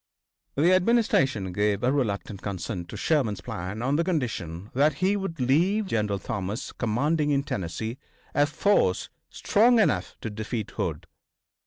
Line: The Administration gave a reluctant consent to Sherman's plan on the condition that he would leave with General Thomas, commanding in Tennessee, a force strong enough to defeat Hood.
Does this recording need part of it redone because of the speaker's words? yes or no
yes